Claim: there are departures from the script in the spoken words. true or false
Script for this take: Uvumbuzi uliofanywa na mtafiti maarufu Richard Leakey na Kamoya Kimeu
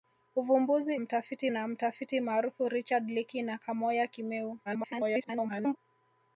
true